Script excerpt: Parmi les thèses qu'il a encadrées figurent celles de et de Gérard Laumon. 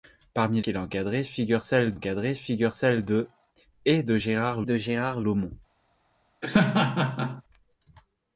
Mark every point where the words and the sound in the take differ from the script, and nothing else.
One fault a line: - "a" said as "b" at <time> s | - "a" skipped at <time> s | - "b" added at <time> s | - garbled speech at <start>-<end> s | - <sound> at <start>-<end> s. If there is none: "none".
- "les thèses" skipped at 0.6 s
- "encadrées figurent celles" added at 1.9 s
- "de Gérard" added at 4.6 s
- laugh at 6.4-7.4 s